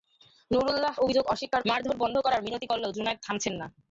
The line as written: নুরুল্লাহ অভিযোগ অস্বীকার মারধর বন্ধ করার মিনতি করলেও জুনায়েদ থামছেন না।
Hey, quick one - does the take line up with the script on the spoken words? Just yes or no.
yes